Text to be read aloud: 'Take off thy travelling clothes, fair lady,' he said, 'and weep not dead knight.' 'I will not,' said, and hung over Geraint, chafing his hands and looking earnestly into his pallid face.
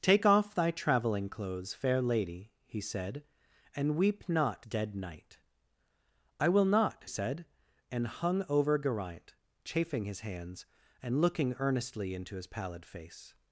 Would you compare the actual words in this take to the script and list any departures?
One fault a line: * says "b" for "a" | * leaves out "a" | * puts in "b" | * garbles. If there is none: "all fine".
all fine